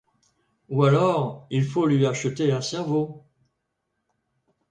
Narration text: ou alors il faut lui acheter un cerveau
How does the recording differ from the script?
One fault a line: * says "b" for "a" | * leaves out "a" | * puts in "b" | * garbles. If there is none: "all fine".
all fine